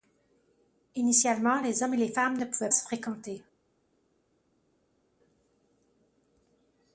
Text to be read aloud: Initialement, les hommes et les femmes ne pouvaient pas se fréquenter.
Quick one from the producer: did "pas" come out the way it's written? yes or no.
no